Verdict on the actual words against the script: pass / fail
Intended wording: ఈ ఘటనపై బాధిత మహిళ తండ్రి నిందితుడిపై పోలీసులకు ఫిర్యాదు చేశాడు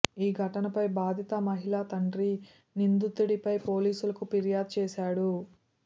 pass